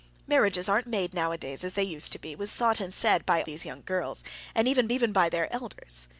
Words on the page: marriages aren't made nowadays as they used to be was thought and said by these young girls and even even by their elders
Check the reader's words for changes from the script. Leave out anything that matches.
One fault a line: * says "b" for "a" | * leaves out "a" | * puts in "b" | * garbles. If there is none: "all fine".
all fine